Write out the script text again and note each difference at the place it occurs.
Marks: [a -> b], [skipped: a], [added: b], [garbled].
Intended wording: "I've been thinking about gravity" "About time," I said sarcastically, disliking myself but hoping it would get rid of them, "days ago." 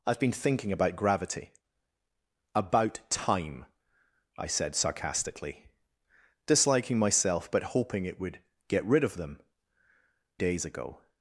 "I've been thinking about gravity" "About time," I said sarcastically, disliking myself but hoping it would get rid of them, "days ago."